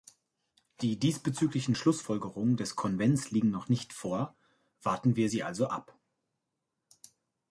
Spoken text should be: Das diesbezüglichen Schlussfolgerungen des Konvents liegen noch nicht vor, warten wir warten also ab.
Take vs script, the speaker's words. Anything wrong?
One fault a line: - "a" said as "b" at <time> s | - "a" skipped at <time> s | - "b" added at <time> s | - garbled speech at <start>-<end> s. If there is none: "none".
- "Das" said as "Die" at 0.8 s
- "warten" said as "sie" at 5.2 s